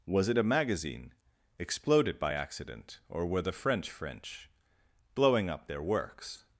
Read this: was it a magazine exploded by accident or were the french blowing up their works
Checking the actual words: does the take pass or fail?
fail